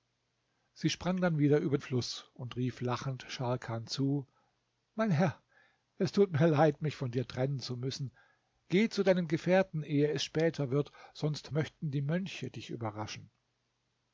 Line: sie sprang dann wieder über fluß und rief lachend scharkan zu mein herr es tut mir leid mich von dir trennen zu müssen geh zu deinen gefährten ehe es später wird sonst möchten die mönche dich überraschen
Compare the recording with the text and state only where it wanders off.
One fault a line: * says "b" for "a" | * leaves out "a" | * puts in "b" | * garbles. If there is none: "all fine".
all fine